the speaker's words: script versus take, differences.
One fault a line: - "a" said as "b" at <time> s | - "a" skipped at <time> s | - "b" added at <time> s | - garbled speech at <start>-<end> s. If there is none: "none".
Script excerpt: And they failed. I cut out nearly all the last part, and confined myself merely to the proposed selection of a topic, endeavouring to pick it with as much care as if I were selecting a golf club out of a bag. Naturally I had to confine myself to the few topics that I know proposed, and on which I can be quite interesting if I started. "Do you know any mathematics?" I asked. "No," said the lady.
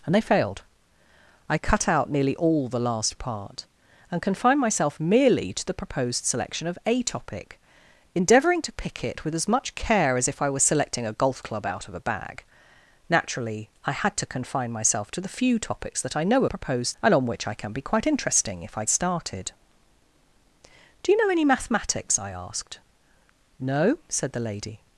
none